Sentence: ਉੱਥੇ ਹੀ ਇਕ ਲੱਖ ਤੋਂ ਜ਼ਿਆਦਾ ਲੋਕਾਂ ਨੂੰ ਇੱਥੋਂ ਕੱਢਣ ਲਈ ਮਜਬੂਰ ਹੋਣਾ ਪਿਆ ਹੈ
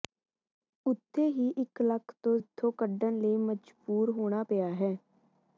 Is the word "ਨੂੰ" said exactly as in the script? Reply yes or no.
no